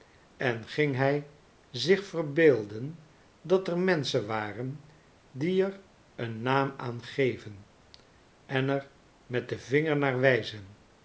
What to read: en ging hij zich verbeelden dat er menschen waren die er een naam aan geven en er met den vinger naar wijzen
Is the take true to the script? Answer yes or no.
yes